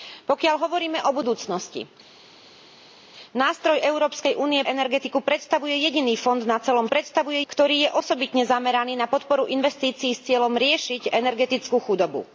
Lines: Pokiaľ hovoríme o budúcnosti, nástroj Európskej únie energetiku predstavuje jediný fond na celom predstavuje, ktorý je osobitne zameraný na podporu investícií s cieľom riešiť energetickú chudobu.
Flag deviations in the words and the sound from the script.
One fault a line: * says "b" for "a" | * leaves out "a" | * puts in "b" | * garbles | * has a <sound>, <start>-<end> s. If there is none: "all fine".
all fine